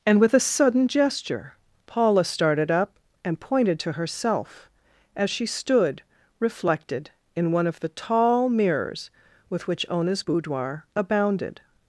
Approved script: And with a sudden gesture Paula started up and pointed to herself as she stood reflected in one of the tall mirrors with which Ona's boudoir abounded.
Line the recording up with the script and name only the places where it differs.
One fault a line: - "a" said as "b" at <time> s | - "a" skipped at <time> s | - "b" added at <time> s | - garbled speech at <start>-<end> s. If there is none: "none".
none